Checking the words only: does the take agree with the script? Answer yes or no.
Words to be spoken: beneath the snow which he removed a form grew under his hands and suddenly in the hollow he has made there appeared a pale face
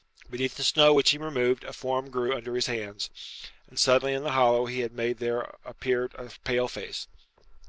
no